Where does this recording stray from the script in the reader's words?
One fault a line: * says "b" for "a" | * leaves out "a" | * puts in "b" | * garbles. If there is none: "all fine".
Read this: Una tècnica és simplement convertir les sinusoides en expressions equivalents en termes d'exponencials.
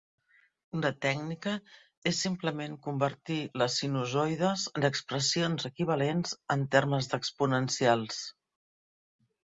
all fine